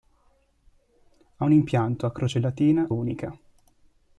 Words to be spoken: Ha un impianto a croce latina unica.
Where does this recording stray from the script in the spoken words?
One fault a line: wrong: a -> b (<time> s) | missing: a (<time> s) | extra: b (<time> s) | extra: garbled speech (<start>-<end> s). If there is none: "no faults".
no faults